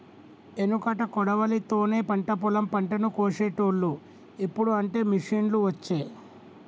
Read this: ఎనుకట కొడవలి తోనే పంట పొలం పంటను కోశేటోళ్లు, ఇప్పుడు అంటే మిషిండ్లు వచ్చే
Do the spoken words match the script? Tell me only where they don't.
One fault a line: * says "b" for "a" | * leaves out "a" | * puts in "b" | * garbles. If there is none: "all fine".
all fine